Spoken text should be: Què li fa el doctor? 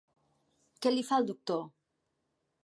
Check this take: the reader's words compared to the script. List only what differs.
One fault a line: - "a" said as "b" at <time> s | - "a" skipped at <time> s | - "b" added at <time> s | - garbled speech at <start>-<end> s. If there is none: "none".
none